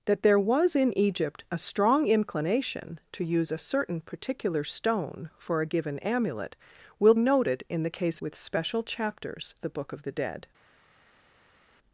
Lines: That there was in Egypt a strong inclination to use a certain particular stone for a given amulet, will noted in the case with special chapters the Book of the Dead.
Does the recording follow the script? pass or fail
pass